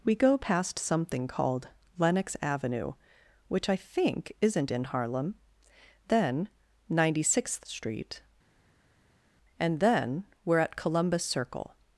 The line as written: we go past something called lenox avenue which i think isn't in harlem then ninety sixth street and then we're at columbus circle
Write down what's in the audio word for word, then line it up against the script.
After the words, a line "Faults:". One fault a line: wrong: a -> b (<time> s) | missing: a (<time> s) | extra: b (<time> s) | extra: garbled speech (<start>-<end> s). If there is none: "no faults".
we go past something called lenox avenue which i think isn't in harlem then ninety sixth street and then we're at columbus circle
Faults:
no faults